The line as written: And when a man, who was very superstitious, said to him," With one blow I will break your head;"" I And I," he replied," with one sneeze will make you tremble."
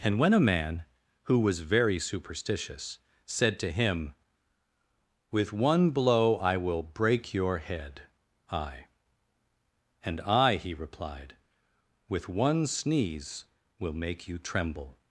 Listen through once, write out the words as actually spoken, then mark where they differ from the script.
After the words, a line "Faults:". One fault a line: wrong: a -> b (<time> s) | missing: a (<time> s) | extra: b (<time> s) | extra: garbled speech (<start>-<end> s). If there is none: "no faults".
And when a man, who was very superstitious, said to him," With one blow I will break your head;"" I And I," he replied," with one sneeze will make you tremble."
Faults:
no faults